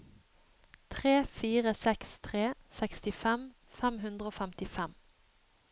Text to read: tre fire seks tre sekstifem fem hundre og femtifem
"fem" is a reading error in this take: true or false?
false